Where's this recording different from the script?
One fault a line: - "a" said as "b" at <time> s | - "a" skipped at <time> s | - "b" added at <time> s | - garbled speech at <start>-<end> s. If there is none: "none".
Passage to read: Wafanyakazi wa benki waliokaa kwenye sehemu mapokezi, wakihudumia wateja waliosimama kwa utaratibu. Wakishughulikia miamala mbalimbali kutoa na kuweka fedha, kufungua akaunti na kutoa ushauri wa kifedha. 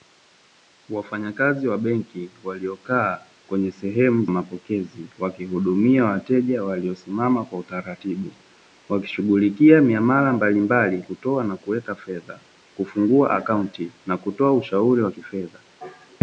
none